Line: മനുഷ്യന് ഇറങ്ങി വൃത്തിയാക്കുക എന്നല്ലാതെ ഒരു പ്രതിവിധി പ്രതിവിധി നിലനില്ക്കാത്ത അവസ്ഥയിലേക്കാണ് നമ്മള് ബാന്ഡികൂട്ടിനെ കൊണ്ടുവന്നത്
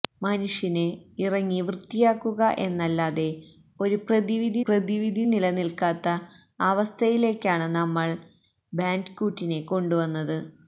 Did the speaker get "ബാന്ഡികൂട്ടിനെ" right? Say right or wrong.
right